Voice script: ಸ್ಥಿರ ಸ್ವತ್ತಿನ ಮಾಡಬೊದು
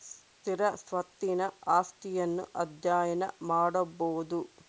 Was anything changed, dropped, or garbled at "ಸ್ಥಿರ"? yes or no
no